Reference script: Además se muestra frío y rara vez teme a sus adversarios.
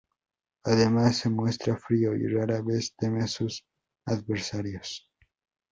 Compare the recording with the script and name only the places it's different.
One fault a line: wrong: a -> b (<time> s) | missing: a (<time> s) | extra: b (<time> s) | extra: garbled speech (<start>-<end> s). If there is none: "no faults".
no faults